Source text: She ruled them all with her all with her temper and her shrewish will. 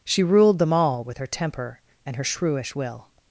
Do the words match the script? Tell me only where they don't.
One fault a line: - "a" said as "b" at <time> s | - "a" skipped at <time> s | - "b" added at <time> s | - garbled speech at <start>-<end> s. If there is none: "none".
- "all with her" skipped at 1.3 s